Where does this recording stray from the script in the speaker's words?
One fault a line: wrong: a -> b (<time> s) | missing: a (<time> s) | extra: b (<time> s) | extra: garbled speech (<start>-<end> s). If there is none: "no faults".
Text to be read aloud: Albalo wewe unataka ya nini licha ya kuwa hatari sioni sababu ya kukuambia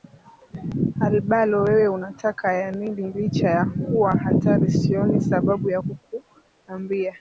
no faults